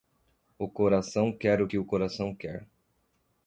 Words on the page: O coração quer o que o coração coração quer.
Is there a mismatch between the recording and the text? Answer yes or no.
yes